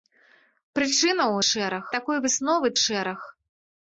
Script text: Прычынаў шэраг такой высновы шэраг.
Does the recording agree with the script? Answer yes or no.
yes